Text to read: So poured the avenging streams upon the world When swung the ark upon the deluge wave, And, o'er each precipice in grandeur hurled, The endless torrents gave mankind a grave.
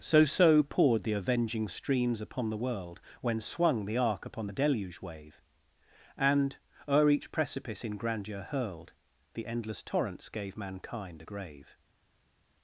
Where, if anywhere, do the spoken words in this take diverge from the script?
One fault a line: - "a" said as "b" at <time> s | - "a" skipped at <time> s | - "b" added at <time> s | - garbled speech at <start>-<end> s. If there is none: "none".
- "so" added at 0.2 s